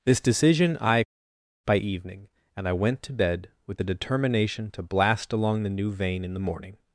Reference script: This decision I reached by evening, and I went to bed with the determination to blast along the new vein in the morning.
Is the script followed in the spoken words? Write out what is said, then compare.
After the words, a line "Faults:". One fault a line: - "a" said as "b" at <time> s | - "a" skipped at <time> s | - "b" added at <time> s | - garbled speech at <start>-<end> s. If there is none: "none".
This decision I by evening, and I went to bed with the determination to blast along the new vein in the morning.
Faults:
- "reached" skipped at 1.0 s